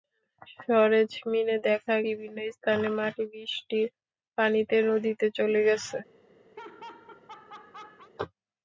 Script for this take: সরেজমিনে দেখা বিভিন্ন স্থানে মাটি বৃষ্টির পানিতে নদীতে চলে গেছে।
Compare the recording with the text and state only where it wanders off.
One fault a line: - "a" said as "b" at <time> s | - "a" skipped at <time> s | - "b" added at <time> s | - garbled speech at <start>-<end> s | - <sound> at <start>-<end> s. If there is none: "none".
- laugh at 6.6-8.1 s